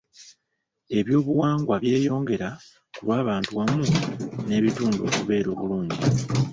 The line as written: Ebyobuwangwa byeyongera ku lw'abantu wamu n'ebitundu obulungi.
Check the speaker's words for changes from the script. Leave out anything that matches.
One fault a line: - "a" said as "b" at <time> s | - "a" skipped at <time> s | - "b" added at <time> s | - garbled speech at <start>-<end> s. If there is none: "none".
- "okubeera" added at 5.1 s